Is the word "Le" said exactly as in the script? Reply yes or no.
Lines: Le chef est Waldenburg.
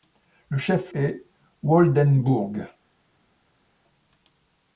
yes